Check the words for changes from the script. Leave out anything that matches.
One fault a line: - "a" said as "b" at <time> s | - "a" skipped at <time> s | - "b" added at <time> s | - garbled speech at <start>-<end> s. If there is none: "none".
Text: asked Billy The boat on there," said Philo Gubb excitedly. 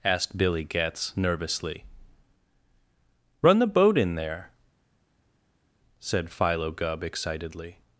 - "Getz nervously Run" added at 0.6 s
- "on" said as "in" at 4.0 s